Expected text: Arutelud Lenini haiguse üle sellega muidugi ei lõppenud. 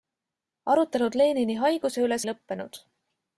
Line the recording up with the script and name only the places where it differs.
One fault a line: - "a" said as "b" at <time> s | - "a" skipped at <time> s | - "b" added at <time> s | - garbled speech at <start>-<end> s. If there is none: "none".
- "sellega muidugi" skipped at 2.2 s